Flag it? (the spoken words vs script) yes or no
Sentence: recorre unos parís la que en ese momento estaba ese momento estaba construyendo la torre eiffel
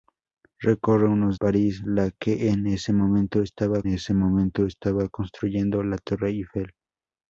no